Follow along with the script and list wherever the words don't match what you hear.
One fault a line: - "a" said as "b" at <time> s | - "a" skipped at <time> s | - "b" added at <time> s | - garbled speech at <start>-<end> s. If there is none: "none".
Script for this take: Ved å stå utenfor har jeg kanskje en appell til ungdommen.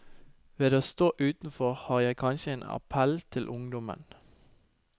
none